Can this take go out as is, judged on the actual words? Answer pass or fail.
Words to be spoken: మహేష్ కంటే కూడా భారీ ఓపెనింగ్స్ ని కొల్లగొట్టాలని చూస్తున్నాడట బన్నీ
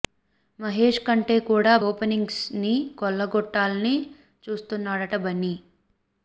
fail